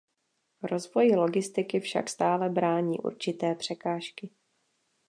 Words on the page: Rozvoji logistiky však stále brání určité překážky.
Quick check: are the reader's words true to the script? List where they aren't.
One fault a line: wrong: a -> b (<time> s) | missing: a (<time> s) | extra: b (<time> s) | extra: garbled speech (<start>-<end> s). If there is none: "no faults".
no faults